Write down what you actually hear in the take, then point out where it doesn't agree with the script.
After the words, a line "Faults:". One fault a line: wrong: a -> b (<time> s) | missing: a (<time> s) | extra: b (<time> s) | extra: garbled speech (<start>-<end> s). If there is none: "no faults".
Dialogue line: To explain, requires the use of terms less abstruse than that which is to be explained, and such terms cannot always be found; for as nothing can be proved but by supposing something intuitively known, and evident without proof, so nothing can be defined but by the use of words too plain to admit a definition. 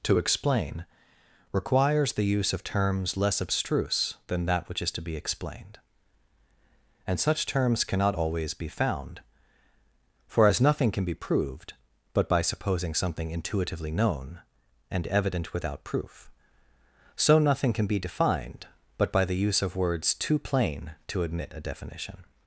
To explain, requires the use of terms less abstruse than that which is to be explained, and such terms cannot always be found; for as nothing can be proved but by supposing something intuitively known, and evident without proof, so nothing can be defined but by the use of words too plain to admit a definition.
Faults:
no faults